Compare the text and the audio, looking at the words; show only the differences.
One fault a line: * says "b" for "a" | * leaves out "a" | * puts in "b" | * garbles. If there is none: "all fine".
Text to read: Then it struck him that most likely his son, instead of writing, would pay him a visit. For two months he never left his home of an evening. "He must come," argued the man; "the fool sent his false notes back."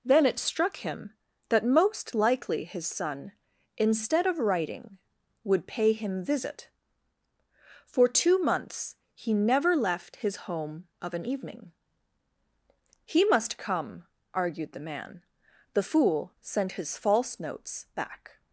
* leaves out "a"